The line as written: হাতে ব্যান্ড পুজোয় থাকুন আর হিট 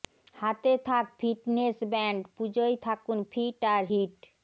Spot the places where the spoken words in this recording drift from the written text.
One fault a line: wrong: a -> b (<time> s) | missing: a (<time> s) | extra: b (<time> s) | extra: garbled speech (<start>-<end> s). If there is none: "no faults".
extra: থাক ফিটনেস (0.9 s)
extra: ফিট (3.3 s)